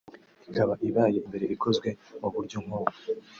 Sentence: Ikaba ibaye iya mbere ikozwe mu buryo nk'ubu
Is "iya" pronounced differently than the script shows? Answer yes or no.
yes